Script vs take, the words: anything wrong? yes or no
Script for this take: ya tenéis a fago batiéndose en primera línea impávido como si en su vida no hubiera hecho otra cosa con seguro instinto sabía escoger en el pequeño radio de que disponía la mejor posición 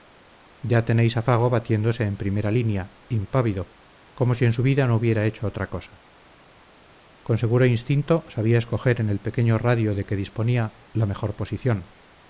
no